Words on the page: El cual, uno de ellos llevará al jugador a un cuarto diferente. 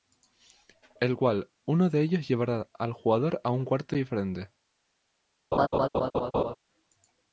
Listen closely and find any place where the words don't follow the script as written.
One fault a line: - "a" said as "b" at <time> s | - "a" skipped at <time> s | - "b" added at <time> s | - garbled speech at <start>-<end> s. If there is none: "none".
none